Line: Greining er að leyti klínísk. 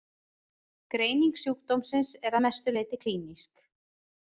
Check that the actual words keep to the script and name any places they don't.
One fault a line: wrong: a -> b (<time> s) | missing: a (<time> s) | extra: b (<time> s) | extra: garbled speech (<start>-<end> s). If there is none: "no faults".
extra: sjúkdómsins (1.4 s)
extra: mestu (2.5 s)